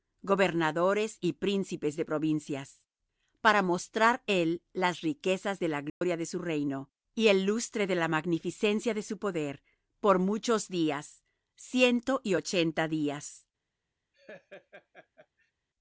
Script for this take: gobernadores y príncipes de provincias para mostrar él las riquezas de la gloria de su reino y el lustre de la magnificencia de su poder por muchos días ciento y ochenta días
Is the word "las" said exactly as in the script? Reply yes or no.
yes